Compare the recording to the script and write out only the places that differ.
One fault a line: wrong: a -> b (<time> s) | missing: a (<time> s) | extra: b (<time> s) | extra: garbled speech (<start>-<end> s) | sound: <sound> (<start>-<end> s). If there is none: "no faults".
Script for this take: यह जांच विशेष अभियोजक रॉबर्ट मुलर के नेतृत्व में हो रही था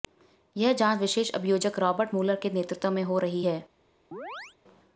wrong: था -> है (3.4 s)
sound: chirp (4.1-4.6 s)